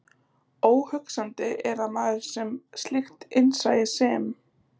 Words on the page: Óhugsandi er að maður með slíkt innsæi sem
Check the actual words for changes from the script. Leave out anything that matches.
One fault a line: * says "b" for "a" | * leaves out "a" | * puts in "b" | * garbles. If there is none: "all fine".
all fine